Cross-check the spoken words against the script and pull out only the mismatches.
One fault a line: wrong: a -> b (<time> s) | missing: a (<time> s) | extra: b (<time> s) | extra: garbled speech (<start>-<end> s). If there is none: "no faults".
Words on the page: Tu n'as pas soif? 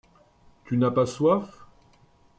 no faults